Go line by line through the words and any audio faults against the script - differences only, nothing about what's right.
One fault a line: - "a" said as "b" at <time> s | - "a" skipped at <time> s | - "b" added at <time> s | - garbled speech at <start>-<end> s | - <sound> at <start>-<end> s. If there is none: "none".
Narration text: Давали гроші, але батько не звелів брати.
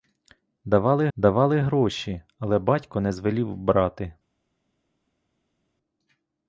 - "давали" added at 1.2 s